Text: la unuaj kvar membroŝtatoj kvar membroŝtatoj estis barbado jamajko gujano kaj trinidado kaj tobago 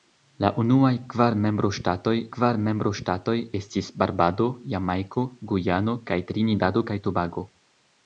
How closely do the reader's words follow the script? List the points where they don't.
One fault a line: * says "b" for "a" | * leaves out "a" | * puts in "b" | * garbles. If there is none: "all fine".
all fine